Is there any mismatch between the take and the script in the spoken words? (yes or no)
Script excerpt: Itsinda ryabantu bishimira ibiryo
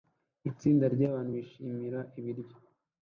no